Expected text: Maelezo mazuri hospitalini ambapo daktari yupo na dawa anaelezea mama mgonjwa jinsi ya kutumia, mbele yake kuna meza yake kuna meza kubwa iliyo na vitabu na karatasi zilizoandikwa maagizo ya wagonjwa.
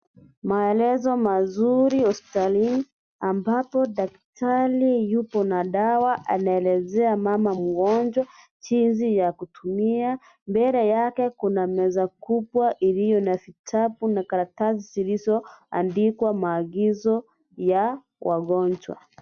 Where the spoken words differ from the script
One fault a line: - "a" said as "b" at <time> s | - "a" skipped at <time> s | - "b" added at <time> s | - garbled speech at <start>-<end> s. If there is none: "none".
- "yake kuna meza" skipped at 12.1 s